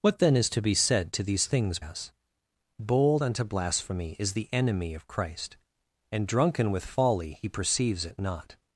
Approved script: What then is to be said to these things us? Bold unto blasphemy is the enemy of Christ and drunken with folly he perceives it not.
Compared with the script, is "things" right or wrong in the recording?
right